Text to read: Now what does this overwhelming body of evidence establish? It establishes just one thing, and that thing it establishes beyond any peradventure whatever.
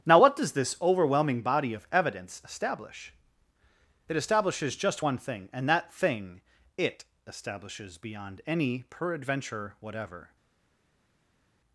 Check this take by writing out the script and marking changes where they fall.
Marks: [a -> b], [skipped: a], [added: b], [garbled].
Now what does this overwhelming body of evidence establish? It establishes just one thing, and that thing it establishes beyond any peradventure whatever.